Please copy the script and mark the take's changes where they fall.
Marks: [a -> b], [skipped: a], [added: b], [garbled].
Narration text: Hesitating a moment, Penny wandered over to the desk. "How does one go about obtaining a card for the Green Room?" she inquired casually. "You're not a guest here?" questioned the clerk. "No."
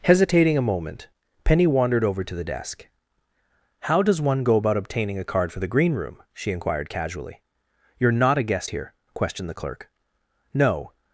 Hesitating a moment, Penny wandered over to the desk. "How does one go about obtaining a card for the Green Room?" she inquired casually. "You're not a guest here?" questioned the clerk. "No."